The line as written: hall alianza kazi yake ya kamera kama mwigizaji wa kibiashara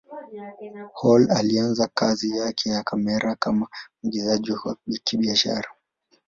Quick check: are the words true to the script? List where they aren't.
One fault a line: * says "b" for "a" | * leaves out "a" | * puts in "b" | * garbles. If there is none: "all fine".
all fine